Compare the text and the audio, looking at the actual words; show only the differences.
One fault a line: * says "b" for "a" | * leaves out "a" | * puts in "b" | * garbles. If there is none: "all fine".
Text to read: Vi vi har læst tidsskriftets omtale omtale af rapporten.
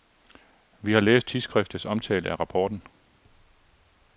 * leaves out "vi"
* leaves out "omtale"